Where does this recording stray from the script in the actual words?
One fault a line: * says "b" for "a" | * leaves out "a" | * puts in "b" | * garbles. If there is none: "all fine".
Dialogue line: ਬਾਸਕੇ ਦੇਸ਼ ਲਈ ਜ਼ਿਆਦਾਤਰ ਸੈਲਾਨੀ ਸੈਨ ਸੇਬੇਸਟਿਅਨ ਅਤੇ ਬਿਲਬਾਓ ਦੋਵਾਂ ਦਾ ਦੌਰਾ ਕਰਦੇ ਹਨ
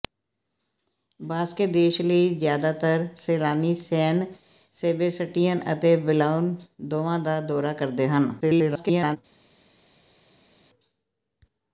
* garbles